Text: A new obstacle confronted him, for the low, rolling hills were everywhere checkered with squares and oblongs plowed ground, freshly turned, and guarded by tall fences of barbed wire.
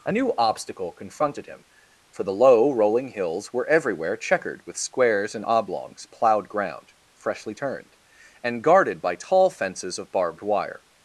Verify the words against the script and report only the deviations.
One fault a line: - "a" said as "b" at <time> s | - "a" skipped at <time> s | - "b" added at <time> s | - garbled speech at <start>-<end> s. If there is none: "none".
none